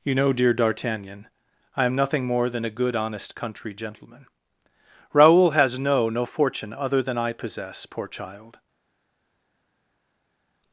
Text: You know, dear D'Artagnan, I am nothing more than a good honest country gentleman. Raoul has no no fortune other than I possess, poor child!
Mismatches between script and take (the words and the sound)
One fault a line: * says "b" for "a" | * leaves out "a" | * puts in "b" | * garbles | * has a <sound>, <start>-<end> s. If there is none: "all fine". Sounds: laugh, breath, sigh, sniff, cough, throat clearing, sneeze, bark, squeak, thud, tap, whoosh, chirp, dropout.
all fine